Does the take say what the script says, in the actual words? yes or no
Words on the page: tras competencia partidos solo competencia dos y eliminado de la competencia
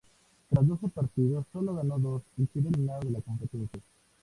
no